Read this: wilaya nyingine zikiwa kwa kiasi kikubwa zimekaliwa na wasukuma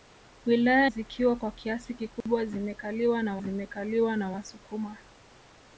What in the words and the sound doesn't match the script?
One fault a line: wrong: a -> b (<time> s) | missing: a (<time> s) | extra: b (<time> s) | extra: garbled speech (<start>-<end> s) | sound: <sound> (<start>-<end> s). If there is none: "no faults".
missing: nyingine (0.9 s)
sound: dropout (2.2-2.3 s)
extra: zimekaliwa na (3.4 s)